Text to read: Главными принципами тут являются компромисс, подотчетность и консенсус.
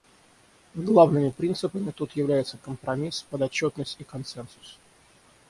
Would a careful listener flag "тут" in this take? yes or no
no